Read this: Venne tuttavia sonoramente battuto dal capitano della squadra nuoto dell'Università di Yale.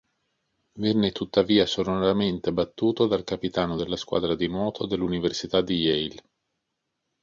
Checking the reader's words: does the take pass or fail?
fail